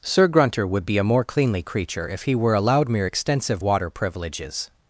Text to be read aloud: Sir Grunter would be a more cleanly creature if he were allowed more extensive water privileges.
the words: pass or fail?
fail